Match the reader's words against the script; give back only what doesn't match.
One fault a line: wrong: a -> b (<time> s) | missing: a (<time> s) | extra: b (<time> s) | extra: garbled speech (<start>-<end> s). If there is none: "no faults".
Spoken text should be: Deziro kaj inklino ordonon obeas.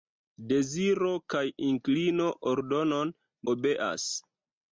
no faults